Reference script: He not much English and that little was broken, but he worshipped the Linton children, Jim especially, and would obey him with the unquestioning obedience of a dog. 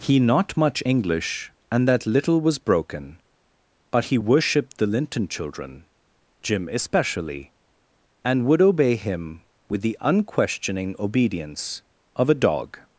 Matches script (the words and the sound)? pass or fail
pass